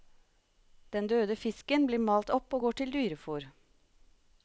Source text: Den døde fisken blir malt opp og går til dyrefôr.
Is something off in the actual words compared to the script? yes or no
no